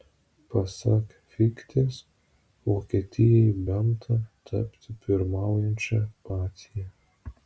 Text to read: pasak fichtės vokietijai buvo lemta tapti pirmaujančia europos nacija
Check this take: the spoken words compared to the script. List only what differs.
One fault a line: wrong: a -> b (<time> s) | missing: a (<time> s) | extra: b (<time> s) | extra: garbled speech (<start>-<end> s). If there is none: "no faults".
missing: buvo (3.5 s)
missing: europos (6.0 s)